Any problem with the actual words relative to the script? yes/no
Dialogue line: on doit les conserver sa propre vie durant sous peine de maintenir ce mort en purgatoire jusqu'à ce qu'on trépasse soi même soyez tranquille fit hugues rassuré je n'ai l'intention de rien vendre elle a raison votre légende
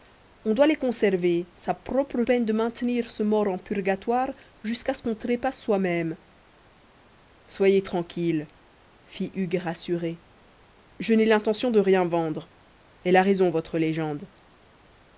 yes